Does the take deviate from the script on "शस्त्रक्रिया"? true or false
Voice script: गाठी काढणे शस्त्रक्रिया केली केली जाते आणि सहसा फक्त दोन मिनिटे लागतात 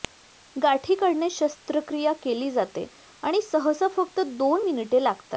false